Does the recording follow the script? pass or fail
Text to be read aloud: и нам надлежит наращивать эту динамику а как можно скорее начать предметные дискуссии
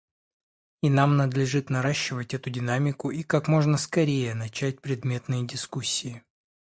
fail